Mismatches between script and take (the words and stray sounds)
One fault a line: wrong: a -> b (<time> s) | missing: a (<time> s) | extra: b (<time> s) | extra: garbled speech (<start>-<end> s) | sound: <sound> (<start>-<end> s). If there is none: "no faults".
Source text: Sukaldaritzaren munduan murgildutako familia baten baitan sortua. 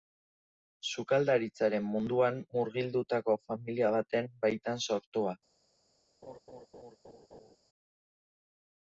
sound: laugh (6.2-7.6 s)